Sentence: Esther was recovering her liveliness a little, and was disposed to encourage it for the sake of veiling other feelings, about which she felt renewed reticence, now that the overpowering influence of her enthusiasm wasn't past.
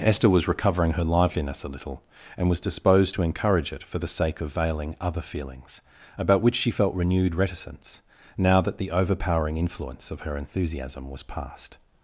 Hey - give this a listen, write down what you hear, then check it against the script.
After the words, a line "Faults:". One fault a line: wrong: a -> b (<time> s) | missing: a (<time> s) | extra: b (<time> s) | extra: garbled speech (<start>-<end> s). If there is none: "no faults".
Esther was recovering her liveliness a little, and was disposed to encourage it for the sake of veiling other feelings, about which she felt renewed reticence, now that the overpowering influence of her enthusiasm was past.
Faults:
wrong: wasn't -> was (11.1 s)